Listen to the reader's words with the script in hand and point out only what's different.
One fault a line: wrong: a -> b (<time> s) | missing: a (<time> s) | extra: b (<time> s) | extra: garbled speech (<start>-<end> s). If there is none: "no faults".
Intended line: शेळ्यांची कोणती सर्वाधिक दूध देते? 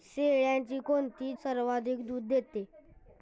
no faults